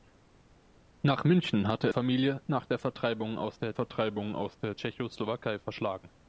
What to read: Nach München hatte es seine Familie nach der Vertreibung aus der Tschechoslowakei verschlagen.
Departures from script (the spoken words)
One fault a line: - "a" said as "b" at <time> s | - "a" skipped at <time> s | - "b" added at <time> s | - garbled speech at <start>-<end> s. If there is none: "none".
- "es seine Familie nach" said as "Familie nach der Vertreibung aus" at 1.9 s